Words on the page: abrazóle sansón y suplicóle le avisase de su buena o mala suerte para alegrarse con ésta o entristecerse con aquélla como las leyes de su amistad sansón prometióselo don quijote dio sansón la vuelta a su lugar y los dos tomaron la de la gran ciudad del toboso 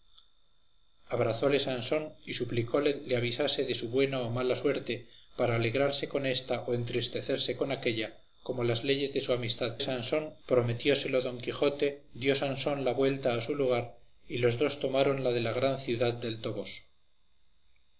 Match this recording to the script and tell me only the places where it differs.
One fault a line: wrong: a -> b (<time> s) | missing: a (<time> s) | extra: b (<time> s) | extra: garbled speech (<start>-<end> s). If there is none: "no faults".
no faults